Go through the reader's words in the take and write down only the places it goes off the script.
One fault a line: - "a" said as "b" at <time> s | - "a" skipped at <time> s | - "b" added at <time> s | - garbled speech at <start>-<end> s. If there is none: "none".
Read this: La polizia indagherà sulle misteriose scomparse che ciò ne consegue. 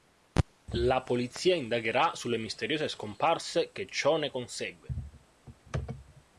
none